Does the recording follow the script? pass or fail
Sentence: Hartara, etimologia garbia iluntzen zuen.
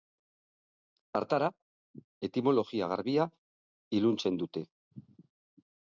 fail